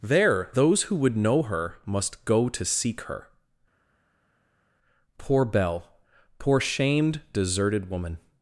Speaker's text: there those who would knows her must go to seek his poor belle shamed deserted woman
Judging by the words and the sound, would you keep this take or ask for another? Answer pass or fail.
fail